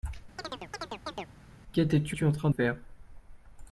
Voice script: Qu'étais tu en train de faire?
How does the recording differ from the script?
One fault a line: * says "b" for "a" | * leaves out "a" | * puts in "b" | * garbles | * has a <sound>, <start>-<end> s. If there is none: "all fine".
* has a chirp, 0.4-1.3 s
* puts in "tu"
* leaves out "de"